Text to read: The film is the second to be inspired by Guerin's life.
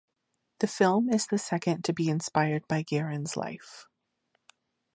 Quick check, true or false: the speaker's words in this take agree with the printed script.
true